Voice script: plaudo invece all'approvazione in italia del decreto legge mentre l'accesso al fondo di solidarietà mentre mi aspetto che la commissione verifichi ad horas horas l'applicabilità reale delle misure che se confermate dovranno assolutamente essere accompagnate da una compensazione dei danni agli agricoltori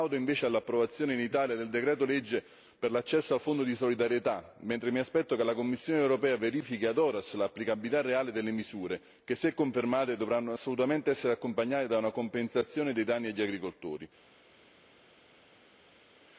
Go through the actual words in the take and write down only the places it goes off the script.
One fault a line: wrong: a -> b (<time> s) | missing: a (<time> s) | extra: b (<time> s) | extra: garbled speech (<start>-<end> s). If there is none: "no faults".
wrong: mentre -> per (2.8 s)
extra: europea (6.0 s)
missing: horas (7.3 s)